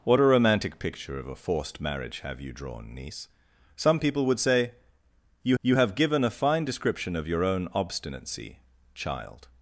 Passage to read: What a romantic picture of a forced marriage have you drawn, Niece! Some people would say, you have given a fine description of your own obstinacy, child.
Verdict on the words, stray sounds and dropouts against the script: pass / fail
fail